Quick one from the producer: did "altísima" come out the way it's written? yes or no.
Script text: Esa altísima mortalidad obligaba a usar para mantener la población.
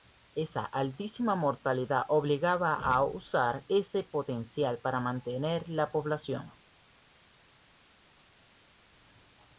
yes